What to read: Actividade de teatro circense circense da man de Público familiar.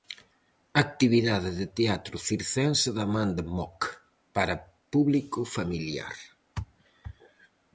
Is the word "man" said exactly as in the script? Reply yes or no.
yes